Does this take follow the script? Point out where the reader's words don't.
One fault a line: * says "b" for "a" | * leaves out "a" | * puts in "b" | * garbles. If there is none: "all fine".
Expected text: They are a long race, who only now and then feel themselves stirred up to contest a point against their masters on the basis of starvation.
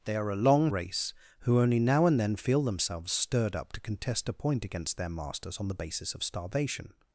all fine